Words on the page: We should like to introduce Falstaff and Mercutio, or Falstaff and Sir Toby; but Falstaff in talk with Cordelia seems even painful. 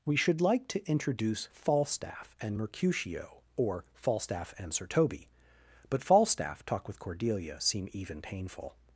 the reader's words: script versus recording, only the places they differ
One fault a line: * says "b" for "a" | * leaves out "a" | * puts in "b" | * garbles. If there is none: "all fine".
* leaves out "in"
* says "seem" for "seems"